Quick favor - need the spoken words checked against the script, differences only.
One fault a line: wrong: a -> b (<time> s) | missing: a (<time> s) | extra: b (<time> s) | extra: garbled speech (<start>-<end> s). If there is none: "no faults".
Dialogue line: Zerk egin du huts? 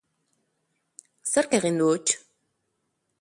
no faults